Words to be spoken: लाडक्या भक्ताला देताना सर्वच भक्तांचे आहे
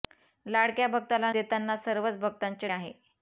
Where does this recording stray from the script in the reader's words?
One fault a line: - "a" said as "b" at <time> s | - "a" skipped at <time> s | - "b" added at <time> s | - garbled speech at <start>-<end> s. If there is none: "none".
none